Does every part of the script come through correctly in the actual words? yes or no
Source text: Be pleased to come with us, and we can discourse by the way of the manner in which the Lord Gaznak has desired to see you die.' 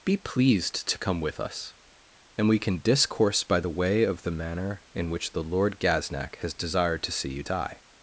yes